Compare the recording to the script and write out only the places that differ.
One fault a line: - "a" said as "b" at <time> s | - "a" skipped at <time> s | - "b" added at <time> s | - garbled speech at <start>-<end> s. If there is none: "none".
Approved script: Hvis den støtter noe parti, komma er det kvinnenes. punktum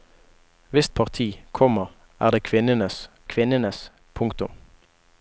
- "den støtter noe" skipped at 0.9 s
- "kvinnenes" added at 3.3 s